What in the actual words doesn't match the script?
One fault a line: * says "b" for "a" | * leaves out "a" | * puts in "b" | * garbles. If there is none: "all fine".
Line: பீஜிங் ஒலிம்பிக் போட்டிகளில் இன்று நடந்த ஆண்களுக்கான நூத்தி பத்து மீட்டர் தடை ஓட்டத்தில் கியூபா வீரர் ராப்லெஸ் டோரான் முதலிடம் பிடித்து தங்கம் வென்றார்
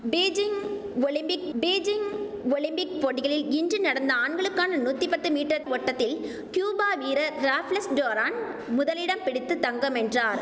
* puts in "பீஜிங் ஒலிம்பிக்"
* leaves out "தடை"